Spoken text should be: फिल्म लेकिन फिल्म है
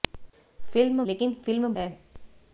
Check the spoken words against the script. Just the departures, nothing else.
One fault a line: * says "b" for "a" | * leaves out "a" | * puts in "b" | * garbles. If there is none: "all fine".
all fine